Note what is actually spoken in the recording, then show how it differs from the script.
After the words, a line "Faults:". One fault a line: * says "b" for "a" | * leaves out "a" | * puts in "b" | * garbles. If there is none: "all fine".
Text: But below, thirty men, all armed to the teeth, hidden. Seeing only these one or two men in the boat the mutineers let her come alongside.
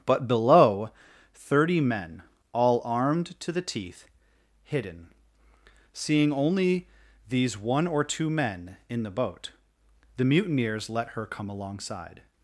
But below, thirty men, all armed to the teeth, hidden. Seeing only these one or two men in the boat the mutineers let her come alongside.
Faults:
all fine